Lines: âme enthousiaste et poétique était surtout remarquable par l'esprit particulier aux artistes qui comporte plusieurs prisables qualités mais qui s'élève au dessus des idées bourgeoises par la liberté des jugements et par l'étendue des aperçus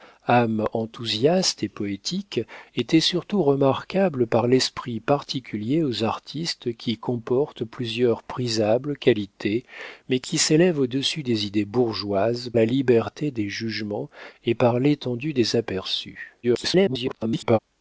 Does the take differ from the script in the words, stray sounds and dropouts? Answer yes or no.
yes